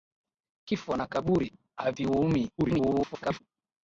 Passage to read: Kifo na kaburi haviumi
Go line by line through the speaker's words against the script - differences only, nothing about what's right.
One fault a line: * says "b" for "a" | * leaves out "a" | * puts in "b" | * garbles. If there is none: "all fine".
* garbles